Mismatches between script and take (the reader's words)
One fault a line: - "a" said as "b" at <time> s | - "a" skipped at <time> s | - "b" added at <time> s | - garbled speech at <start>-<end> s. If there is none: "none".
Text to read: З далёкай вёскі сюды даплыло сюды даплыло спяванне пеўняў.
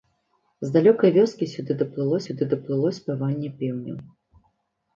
none